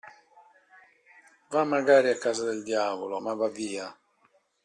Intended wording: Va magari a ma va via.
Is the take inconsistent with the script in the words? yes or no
yes